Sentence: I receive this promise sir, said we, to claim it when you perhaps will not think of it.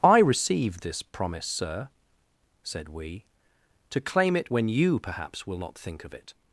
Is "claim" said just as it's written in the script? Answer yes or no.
yes